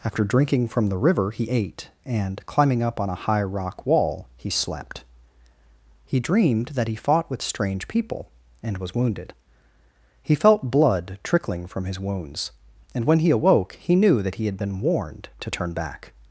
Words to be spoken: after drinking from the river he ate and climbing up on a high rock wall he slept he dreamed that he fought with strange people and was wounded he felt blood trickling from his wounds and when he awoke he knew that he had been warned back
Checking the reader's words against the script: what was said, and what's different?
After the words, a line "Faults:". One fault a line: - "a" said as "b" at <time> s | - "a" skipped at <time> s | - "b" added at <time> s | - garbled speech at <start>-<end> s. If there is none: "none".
after drinking from the river he ate and climbing up on a high rock wall he slept he dreamed that he fought with strange people and was wounded he felt blood trickling from his wounds and when he awoke he knew that he had been warned to turn back
Faults:
- "to turn" added at 15.4 s